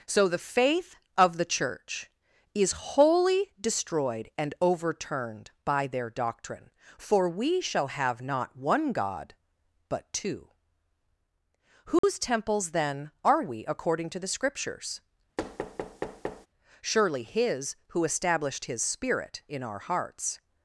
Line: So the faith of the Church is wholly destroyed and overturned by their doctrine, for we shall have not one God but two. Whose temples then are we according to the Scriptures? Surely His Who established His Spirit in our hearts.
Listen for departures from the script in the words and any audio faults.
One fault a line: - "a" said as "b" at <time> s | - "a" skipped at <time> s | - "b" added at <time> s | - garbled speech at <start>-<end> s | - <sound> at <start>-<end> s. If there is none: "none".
- dropout at 12.0-12.0 s
- thud at 15.4-16.5 s